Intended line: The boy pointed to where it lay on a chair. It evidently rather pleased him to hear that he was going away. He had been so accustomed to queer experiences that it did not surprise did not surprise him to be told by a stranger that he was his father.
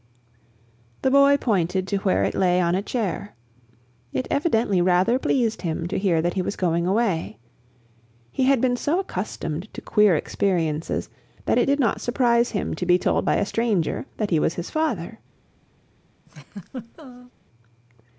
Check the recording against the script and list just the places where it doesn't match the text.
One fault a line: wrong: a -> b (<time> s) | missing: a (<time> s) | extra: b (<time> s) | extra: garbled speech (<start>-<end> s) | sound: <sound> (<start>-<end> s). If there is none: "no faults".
missing: did not surprise (12.5 s)
sound: laugh (16.3-17.3 s)